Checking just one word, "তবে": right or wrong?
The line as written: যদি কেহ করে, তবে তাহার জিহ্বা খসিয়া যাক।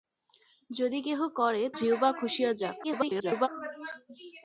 wrong